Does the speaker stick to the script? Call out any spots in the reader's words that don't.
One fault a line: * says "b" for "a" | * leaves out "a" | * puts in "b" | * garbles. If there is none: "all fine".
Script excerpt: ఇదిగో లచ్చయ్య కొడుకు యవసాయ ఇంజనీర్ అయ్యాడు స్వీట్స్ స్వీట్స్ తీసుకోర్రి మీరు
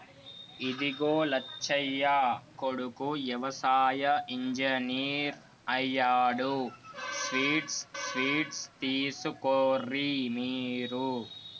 all fine